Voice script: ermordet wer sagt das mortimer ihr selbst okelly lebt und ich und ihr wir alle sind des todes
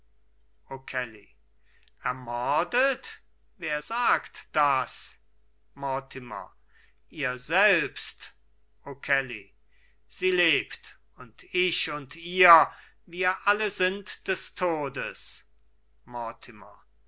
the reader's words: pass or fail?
fail